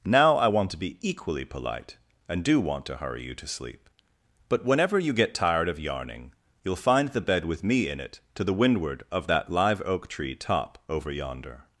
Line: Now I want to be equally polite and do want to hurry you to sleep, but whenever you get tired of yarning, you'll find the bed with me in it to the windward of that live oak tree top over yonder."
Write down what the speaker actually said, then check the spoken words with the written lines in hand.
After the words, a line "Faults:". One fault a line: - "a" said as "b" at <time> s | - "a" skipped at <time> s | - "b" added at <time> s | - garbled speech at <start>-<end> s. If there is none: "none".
Now I want to be equally polite and do want to hurry you to sleep, but whenever you get tired of yarning, you'll find the bed with me in it to the windward of that live oak tree top over yonder."
Faults:
none